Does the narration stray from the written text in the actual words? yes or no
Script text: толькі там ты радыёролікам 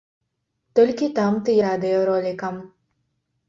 no